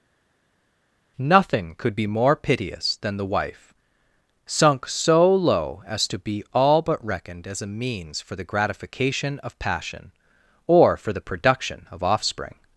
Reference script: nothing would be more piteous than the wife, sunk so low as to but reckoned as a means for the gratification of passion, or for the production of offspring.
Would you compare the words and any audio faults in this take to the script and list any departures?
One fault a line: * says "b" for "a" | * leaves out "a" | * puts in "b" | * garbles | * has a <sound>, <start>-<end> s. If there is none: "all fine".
* says "could" for "would"
* puts in "be all"